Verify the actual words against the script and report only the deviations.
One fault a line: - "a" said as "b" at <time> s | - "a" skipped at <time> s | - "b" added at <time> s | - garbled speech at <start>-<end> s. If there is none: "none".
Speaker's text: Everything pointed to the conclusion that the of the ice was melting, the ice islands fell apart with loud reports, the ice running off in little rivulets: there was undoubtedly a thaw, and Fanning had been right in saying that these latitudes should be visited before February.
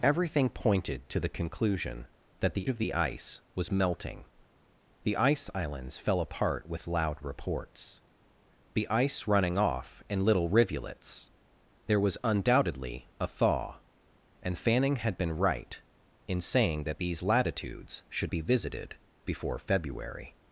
none